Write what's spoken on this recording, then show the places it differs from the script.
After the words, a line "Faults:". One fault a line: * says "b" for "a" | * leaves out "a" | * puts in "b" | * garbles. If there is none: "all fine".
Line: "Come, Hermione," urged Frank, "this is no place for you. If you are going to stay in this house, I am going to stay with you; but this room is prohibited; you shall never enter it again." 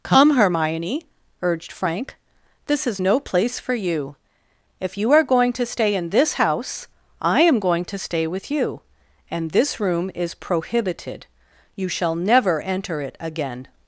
"Come, Hermione," urged Frank, "this is no place for you. If you are going to stay in this house, I am going to stay with you; and this room is prohibited; you shall never enter it again."
Faults:
* says "and" for "but"